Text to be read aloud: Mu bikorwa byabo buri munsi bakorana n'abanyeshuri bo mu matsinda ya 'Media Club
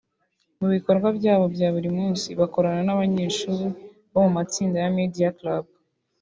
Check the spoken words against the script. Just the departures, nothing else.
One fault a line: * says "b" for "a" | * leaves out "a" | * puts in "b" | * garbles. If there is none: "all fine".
* puts in "bya"